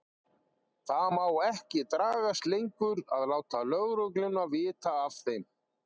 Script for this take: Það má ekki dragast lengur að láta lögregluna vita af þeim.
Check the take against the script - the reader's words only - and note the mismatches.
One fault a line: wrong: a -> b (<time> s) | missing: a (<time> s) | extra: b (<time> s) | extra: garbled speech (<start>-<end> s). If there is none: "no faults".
no faults